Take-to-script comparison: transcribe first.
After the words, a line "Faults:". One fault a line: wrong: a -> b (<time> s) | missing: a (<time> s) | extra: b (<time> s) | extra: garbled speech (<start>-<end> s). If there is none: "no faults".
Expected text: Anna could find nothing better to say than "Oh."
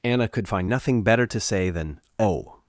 Anna could find nothing better to say than "Oh."
Faults:
no faults